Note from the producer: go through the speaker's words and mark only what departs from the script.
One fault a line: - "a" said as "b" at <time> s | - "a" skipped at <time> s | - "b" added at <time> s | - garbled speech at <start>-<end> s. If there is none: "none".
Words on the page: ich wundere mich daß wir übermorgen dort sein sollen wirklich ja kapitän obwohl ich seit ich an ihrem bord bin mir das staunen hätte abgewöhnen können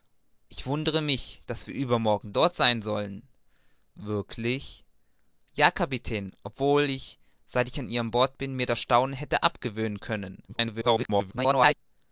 - garbled speech at 10.5-11.7 s